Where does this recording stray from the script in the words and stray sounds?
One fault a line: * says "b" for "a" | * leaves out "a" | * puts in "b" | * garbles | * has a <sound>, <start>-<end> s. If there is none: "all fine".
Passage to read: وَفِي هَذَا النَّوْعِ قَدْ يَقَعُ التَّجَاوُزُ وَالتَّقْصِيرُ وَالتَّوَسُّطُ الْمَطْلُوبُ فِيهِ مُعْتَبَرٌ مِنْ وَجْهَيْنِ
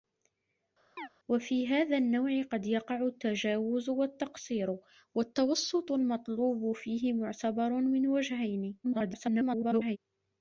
* has a chirp, 1.0-1.1 s
* garbles